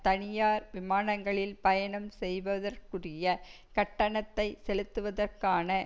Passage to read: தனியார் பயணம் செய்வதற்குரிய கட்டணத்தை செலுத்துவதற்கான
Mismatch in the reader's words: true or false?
true